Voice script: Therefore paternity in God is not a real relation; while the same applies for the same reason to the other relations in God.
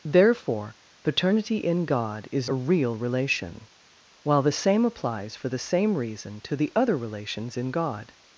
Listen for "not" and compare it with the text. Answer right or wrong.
wrong